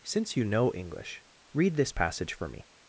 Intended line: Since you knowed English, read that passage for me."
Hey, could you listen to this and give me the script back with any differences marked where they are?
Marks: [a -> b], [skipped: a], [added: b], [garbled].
Since you [knowed -> know] English, read [that -> this] passage for me."